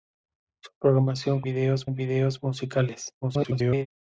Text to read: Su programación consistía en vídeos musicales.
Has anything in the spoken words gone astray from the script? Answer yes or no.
yes